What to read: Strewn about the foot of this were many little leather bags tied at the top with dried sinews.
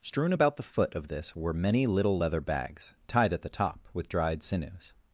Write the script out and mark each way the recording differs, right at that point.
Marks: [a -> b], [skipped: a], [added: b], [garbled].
Strewn about the foot of this were many little leather bags tied at the top with dried sinews.